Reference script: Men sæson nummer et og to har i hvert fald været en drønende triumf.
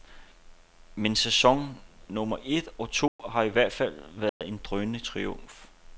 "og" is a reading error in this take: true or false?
false